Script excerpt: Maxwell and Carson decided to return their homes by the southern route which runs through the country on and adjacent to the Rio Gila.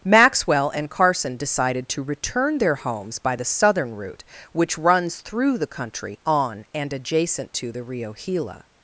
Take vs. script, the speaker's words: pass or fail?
pass